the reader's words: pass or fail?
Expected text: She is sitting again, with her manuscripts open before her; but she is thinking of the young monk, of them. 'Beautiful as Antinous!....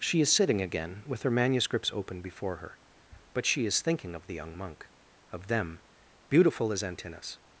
pass